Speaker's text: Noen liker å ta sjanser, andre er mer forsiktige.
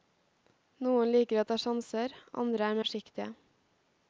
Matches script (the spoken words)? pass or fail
fail